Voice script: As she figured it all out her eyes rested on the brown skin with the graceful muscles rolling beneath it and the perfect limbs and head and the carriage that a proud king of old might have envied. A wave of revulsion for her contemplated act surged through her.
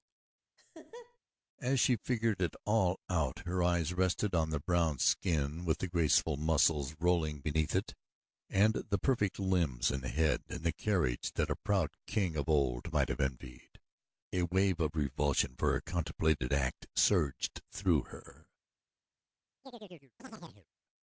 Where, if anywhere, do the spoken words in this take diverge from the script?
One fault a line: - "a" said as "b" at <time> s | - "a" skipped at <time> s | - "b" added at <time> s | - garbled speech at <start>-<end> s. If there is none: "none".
none